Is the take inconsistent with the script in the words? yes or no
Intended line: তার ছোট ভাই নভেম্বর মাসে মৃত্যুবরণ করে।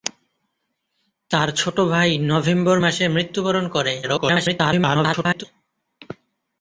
yes